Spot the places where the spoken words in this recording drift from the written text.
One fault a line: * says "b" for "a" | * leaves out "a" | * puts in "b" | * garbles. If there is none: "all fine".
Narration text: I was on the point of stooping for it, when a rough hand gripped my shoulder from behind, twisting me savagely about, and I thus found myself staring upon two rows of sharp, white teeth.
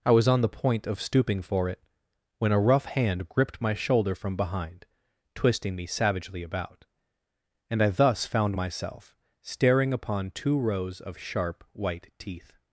all fine